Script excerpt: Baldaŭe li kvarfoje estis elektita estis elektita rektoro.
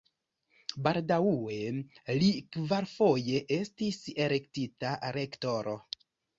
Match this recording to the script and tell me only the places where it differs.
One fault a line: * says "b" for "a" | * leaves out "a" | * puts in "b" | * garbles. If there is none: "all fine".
* leaves out "estis elektita"